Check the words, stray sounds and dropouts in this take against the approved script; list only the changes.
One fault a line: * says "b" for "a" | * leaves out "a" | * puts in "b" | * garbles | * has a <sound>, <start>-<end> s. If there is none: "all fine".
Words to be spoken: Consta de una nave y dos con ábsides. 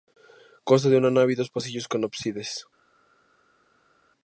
* puts in "pasillos"